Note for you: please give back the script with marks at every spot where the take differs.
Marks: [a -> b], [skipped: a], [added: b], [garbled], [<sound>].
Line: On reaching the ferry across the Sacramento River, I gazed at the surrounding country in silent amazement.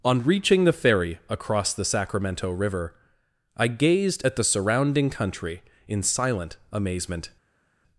On reaching the ferry across the Sacramento River, I gazed at the surrounding country in silent amazement.